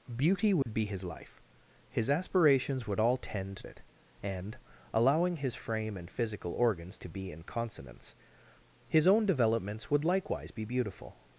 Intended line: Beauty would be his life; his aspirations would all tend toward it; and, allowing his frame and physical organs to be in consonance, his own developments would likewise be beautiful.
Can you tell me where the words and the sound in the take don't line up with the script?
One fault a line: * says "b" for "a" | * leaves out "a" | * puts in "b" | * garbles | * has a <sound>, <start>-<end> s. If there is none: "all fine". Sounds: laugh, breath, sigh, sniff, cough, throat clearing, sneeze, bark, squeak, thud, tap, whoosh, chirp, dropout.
* has a dropout, 0.6-0.7 s
* leaves out "toward"